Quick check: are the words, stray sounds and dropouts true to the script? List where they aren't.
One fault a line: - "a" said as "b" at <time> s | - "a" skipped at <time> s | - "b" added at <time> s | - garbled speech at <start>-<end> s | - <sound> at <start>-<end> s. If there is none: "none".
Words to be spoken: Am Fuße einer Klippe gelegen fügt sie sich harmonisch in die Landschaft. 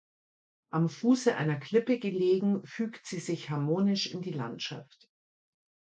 none